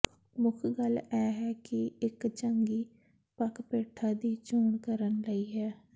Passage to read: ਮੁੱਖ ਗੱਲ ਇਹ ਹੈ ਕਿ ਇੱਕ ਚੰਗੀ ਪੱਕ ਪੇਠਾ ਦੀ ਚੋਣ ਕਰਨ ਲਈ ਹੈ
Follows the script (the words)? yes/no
yes